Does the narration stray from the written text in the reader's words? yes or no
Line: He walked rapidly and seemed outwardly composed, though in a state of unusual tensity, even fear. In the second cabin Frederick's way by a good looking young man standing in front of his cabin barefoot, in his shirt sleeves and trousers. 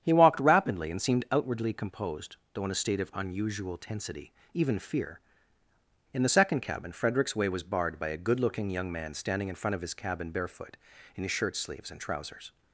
yes